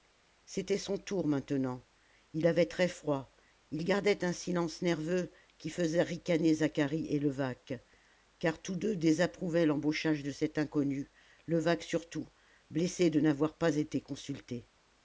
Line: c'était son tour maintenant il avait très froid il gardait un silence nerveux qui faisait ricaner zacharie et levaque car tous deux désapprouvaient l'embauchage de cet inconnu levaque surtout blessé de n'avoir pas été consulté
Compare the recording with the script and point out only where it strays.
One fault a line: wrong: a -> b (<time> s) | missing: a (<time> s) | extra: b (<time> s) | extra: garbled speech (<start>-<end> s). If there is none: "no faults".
no faults